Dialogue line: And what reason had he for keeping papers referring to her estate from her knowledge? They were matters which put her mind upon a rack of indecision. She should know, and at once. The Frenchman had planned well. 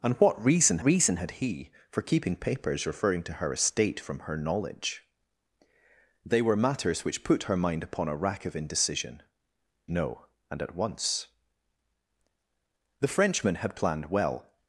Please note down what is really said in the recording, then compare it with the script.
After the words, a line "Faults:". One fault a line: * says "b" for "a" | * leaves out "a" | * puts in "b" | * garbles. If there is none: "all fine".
And what reason reason had he for keeping papers referring to her estate from her knowledge? They were matters which put her mind upon a rack of indecision. Know, and at once. The Frenchman had planned well.
Faults:
* puts in "reason"
* leaves out "She should"